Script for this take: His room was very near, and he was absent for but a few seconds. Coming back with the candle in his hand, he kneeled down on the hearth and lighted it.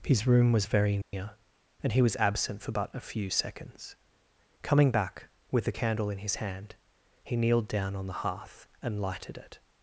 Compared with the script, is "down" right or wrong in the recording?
right